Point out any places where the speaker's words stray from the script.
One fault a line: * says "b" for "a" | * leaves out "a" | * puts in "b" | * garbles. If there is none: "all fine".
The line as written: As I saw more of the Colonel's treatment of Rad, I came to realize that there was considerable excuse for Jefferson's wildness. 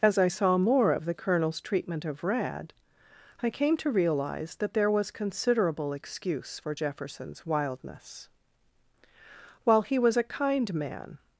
* puts in "While he was a kind man"